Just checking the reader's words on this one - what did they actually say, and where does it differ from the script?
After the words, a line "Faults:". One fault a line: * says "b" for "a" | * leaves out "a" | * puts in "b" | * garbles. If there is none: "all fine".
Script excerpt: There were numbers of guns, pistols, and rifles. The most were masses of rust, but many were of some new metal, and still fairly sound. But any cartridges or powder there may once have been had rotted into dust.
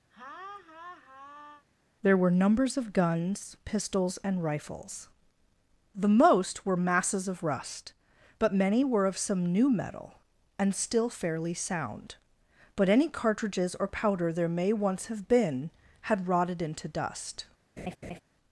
There were numbers of guns, pistols, and rifles. The most were masses of rust, but many were of some new metal, and still fairly sound. But any cartridges or powder there may once have been had rotted into dust.
Faults:
all fine